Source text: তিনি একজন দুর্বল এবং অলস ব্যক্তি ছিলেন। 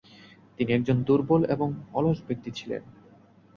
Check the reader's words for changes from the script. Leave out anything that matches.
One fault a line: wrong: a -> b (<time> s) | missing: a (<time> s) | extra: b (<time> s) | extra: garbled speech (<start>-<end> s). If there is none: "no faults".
no faults